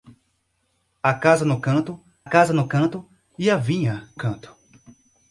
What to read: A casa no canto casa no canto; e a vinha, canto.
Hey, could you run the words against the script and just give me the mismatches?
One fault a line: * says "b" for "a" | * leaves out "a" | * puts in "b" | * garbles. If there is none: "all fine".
all fine